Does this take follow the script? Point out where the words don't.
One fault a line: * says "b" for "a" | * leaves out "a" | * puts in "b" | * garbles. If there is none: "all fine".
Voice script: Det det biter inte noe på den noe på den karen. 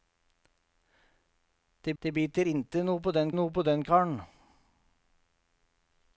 all fine